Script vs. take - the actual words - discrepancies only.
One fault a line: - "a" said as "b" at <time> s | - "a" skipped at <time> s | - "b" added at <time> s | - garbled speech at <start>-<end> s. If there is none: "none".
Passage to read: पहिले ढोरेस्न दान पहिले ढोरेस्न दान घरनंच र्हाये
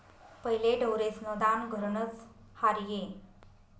- "पहिले ढोरेस्न दान" skipped at 1.7 s